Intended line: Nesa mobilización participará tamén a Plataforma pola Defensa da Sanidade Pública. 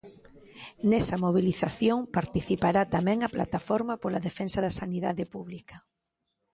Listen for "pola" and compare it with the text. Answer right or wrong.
right